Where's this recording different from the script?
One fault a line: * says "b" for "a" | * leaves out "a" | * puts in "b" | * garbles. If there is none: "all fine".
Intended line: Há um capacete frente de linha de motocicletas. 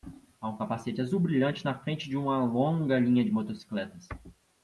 * puts in "azul brilhante na"
* puts in "uma longa"